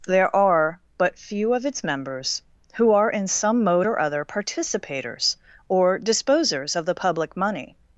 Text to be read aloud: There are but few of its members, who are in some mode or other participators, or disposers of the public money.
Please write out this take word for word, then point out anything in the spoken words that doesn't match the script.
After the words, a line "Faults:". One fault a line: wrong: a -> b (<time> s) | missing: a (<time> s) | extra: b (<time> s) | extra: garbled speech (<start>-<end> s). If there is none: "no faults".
There are but few of its members, who are in some mode or other participators, or disposers of the public money.
Faults:
no faults